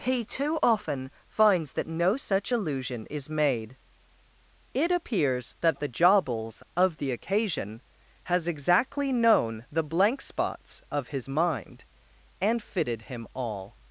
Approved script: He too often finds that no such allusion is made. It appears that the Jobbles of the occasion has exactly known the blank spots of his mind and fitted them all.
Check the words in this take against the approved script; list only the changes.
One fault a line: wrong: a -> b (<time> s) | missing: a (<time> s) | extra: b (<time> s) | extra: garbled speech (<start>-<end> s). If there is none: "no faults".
wrong: them -> him (13.1 s)